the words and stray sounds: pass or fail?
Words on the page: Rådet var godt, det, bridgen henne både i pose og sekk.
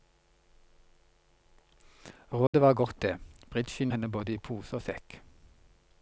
fail